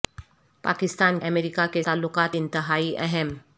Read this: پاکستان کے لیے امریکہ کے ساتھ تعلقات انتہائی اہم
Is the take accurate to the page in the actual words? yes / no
no